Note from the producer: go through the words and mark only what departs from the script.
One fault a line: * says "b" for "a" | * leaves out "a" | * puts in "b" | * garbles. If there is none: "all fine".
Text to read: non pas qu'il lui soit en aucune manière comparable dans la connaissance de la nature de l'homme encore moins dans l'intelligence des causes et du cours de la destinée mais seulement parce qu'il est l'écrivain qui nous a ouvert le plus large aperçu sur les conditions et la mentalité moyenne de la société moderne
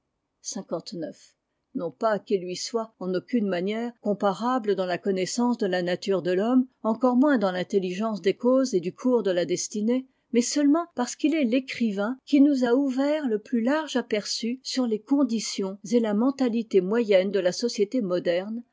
all fine